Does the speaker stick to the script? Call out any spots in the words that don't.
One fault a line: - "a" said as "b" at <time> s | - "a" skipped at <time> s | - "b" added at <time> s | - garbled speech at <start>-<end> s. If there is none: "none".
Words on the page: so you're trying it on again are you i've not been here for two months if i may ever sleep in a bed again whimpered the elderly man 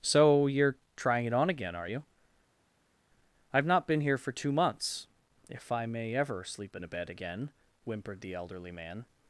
none